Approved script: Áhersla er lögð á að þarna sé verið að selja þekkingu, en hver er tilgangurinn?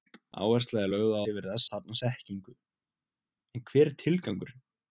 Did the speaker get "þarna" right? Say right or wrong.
wrong